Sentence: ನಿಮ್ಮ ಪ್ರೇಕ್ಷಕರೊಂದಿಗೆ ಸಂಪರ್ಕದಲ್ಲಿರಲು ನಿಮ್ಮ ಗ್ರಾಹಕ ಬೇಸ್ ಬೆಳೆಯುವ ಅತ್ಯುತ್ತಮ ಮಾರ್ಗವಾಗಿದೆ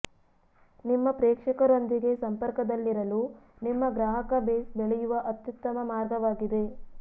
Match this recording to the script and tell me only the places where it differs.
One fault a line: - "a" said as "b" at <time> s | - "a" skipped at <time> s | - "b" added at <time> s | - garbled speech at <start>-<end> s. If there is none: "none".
none